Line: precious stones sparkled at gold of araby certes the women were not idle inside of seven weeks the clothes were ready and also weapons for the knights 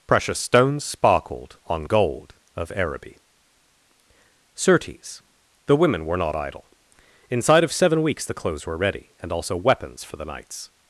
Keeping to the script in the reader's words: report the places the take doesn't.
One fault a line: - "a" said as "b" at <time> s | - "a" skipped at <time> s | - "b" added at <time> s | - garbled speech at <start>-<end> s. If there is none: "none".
- "at" said as "on" at 1.6 s